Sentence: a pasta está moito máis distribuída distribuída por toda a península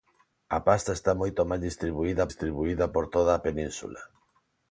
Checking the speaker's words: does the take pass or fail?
pass